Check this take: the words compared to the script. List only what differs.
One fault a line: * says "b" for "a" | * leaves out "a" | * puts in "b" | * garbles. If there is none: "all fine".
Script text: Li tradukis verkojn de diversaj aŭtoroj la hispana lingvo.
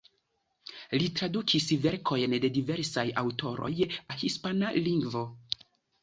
all fine